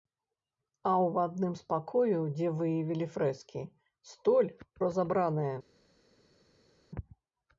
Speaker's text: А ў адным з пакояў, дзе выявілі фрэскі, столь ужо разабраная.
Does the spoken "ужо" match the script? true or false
false